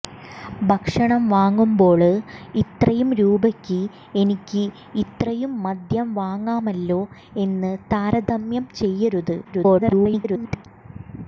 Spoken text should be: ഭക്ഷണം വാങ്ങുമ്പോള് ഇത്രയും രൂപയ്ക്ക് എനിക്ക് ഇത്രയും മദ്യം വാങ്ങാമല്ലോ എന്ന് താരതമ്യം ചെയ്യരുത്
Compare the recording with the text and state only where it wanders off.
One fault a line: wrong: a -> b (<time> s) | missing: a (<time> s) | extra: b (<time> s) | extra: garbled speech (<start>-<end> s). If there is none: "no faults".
extra: garbled speech (9.4-10.7 s)